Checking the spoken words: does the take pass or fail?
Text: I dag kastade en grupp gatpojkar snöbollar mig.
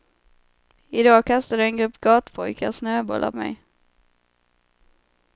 pass